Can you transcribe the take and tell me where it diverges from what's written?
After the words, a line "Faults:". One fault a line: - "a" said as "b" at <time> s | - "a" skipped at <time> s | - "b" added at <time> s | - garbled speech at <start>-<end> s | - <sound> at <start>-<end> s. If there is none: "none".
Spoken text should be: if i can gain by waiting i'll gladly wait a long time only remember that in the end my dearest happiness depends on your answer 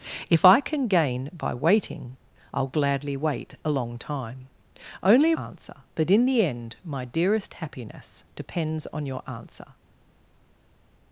if i can gain by waiting i'll gladly wait a long time only answer that in the end my dearest happiness depends on your answer
Faults:
- "remember" said as "answer" at 5.4 s